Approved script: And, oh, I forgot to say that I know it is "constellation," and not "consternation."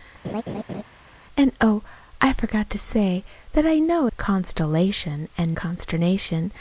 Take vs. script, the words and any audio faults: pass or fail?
fail